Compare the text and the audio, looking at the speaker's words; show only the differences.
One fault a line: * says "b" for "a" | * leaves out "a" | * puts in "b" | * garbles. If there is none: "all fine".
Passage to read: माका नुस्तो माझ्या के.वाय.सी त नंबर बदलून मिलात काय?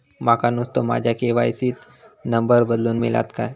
all fine